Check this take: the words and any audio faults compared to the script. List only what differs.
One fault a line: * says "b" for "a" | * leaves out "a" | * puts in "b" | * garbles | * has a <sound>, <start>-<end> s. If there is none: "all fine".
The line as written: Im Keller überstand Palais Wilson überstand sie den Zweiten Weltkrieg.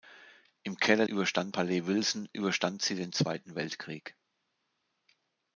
all fine